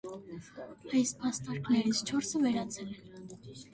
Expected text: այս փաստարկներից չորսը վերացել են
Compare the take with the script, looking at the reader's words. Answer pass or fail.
pass